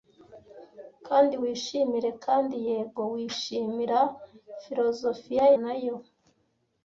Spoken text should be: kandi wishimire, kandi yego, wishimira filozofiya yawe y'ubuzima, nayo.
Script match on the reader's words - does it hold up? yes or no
no